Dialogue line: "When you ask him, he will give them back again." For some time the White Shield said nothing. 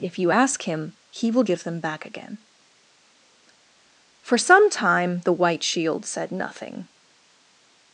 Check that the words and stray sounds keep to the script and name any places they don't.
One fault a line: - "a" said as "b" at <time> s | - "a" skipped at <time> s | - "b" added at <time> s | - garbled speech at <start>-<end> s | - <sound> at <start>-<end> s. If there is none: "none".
- "When" said as "If" at 0.0 s